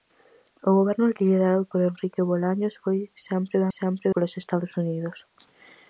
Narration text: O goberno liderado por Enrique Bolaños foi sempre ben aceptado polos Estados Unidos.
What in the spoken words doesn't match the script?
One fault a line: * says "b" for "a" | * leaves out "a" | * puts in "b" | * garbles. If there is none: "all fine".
* says "sempre" for "aceptado"